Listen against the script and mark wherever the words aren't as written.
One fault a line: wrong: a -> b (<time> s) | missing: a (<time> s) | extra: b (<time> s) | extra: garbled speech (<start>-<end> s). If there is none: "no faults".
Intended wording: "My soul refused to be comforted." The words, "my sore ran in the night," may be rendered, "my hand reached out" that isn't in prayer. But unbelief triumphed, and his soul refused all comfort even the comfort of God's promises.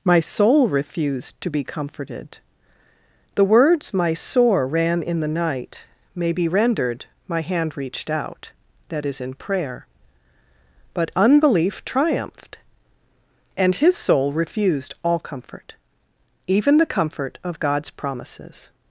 wrong: isn't -> is (9.1 s)